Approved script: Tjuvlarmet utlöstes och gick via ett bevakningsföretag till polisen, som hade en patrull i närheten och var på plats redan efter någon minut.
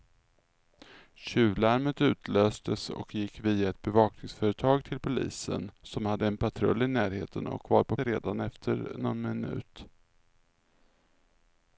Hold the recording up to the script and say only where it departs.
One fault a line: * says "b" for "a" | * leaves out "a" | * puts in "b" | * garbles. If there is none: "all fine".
* leaves out "plats"